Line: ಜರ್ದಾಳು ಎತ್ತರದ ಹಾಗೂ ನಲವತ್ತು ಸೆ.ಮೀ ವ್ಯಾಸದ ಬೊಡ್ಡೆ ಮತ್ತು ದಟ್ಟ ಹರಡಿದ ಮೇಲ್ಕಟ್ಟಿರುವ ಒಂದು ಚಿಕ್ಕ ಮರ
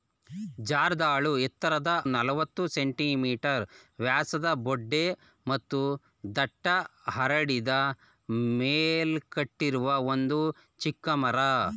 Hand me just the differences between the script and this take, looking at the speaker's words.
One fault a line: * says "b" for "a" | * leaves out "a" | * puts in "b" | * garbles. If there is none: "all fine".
* leaves out "ಹಾಗೂ"